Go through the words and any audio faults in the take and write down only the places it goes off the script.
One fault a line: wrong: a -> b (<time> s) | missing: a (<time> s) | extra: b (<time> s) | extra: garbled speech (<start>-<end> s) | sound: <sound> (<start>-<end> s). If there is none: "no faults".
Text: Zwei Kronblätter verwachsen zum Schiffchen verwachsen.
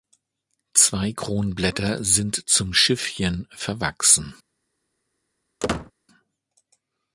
wrong: verwachsen -> sind (2.0 s)
sound: squeak (5.6-5.9 s)